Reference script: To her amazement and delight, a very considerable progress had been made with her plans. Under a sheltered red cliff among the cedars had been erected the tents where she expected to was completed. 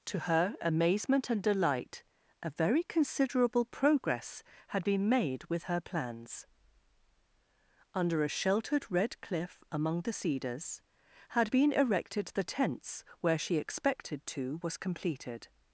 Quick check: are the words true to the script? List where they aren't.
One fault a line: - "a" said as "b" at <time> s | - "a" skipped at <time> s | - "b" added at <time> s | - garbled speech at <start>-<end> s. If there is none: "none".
none